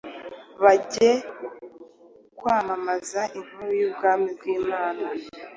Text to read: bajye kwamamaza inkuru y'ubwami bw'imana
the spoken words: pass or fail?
pass